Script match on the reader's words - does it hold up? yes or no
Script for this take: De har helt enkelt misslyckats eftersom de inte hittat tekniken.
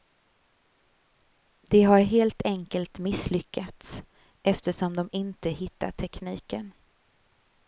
yes